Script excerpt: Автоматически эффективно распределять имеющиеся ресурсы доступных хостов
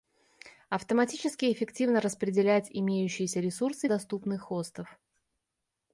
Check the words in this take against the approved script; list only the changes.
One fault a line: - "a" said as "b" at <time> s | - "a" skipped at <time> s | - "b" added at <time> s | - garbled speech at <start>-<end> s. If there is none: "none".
none